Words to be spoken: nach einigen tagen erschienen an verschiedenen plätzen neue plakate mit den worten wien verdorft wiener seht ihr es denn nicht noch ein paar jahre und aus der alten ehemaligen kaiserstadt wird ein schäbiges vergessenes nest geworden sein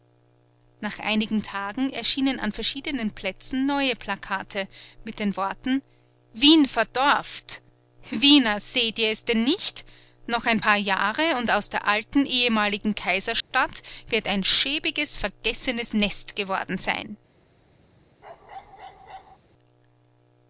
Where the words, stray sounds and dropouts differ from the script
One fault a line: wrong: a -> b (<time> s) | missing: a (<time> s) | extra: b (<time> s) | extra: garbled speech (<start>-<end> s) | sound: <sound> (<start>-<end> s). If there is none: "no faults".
sound: dropout (13.4-13.5 s)
sound: bark (18.2-19.4 s)